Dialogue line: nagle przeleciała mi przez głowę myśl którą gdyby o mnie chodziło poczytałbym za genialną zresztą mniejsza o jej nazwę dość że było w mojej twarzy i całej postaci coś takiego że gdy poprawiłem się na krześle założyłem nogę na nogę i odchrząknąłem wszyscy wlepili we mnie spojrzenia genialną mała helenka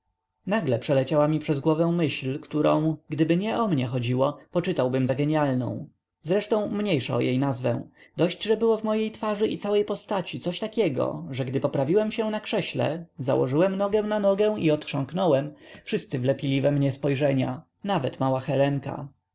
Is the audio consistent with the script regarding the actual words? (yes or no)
no